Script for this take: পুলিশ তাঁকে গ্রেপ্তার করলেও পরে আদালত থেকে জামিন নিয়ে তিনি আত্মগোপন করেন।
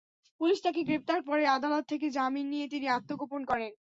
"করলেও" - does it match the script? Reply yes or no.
no